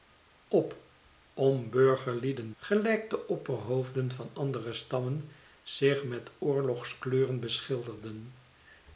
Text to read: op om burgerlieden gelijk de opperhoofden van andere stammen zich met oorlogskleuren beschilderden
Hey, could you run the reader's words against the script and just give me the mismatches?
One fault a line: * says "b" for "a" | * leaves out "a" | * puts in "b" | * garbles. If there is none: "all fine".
all fine